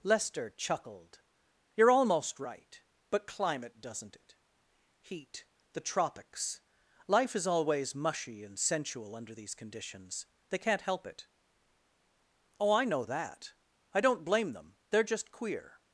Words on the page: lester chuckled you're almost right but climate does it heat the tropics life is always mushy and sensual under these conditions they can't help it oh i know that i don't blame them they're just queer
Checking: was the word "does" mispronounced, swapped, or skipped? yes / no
yes